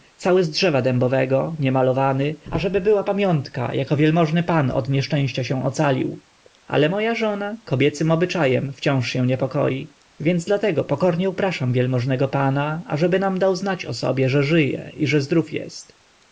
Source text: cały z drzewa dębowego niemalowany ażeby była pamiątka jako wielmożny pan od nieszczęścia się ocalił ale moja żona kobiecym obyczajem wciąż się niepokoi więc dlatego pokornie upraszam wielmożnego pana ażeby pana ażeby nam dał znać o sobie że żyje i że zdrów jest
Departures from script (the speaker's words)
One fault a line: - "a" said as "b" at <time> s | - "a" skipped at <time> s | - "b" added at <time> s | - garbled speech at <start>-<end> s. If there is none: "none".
- "pana ażeby" skipped at 13.2 s